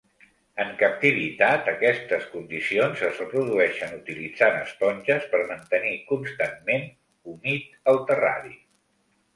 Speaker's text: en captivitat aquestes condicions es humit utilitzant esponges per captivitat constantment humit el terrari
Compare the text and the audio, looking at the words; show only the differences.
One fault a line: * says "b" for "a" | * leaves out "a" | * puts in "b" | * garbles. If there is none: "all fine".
* says "reprodueixen" for "humit"
* says "mantenir" for "captivitat"